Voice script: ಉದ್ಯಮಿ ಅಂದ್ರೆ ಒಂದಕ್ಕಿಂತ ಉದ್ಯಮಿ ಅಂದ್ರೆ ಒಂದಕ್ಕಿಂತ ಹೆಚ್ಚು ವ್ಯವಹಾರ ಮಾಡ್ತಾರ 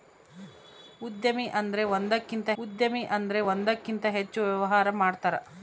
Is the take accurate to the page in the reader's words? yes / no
yes